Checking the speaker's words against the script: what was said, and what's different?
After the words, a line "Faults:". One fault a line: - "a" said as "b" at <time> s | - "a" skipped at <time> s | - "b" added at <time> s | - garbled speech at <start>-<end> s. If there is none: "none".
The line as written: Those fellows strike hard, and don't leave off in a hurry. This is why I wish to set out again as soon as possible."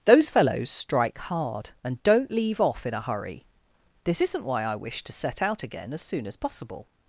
Those fellows strike hard, and don't leave off in a hurry. This isn't why I wish to set out again as soon as possible."
Faults:
- "is" said as "isn't" at 4.2 s